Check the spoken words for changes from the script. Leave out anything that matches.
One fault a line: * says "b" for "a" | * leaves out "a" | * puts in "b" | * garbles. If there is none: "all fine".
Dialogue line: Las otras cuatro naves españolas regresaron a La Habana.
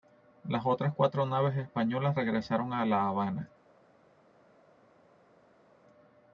all fine